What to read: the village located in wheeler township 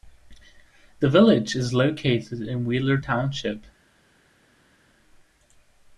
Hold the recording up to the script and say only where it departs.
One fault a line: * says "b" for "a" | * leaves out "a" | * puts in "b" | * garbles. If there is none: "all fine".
* puts in "is"